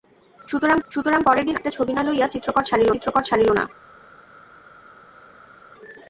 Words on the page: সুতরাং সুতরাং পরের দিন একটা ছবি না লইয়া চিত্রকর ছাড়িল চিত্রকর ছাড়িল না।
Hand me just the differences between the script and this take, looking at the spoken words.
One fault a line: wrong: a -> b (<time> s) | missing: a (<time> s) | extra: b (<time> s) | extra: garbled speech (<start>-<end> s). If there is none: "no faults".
no faults